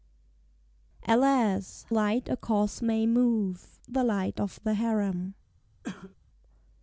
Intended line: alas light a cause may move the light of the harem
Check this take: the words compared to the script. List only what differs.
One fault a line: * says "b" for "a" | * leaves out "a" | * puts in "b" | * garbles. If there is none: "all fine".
all fine